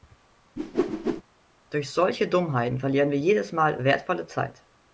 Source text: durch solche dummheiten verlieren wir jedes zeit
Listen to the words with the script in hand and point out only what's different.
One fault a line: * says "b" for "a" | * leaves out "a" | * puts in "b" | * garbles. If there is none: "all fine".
* puts in "mal wertvolle"